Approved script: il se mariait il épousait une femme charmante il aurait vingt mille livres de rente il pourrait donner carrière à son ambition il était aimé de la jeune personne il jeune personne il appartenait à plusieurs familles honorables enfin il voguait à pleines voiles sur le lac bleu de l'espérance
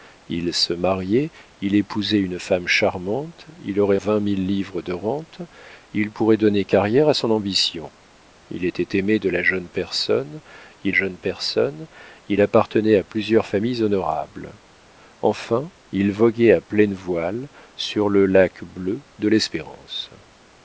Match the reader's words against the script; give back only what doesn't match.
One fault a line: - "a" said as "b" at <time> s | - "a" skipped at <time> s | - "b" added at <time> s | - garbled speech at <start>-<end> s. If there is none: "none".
none